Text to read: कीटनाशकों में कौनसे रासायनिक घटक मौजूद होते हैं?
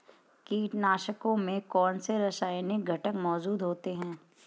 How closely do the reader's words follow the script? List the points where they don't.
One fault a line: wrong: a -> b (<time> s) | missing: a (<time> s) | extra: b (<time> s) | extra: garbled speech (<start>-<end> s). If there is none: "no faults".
no faults